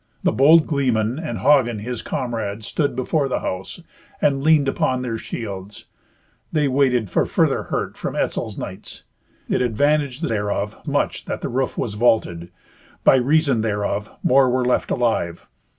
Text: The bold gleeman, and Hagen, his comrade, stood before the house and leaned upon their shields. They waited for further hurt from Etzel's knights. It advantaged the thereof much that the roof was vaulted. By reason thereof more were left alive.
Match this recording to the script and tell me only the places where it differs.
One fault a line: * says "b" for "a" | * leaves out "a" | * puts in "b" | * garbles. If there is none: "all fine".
all fine